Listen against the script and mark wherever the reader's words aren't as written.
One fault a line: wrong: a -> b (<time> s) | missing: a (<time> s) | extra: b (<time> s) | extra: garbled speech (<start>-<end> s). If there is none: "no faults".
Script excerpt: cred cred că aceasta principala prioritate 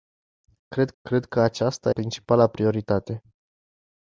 no faults